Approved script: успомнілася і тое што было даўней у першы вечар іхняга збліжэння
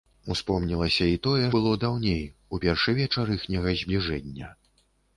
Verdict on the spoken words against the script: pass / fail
fail